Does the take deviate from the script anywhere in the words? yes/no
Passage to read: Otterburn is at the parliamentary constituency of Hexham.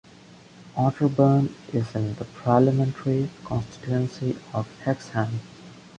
yes